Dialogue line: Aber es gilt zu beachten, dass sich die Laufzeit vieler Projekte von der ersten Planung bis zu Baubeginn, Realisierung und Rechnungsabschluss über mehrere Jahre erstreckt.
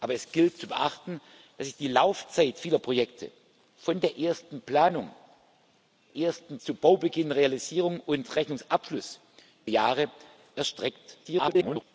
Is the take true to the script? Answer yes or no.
no